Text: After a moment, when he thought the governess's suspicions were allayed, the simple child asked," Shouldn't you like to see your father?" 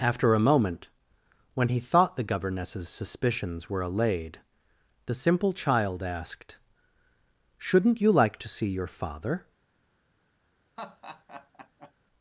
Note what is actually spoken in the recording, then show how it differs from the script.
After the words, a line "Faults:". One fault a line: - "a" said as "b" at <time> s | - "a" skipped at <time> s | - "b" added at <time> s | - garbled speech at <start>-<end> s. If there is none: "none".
After a moment, when he thought the governess's suspicions were allayed, the simple child asked," Shouldn't you like to see your father?"
Faults:
none